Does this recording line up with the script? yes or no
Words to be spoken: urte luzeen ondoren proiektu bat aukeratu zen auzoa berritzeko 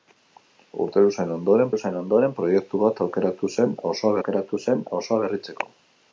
no